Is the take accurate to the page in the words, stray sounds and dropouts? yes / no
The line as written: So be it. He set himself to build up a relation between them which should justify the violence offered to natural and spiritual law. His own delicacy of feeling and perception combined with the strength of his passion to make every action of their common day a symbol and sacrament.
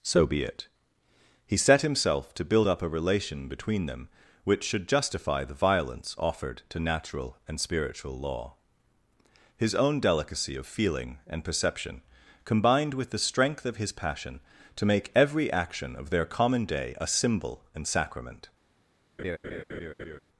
no